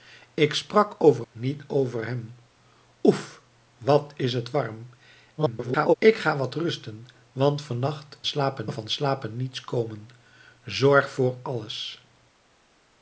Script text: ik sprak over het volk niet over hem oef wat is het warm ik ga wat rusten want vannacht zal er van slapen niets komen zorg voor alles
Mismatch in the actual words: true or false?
true